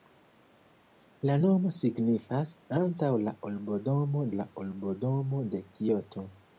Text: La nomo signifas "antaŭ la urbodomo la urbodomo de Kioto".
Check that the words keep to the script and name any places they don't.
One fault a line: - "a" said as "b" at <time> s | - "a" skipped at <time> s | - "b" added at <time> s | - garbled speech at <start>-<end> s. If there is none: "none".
none